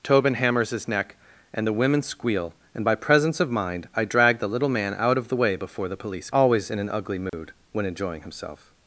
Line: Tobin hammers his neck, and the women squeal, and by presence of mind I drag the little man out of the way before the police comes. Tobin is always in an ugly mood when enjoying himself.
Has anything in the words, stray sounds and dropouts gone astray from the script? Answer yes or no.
yes